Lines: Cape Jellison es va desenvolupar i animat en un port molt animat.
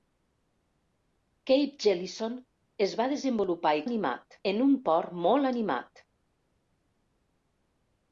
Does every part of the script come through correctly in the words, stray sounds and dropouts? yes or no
yes